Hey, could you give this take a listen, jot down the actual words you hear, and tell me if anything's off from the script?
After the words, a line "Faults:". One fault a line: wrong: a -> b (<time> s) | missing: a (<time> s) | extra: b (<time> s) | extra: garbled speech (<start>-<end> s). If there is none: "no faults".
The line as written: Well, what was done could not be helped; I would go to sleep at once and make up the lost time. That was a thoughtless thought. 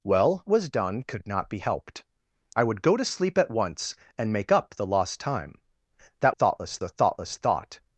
Well, was done could not be helped; I would go to sleep at once and make up the lost time. That thoughtless a thoughtless thought.
Faults:
missing: what (0.5 s)
wrong: was -> thoughtless (6.3 s)